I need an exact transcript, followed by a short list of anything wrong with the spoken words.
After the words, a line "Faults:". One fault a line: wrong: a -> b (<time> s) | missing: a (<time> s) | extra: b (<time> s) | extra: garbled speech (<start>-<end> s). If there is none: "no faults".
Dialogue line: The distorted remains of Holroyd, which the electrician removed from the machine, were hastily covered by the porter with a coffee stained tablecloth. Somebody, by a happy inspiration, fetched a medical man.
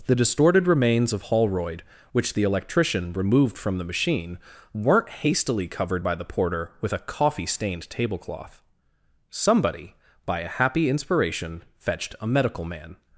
The distorted remains of Holroyd, which the electrician removed from the machine, weren't hastily covered by the porter with a coffee stained tablecloth. Somebody, by a happy inspiration, fetched a medical man.
Faults:
wrong: were -> weren't (4.7 s)